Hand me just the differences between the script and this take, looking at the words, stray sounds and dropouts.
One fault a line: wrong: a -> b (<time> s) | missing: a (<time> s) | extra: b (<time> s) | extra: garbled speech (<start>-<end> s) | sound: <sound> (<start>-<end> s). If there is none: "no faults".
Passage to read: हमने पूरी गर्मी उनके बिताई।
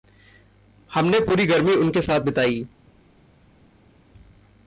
extra: साथ (2.0 s)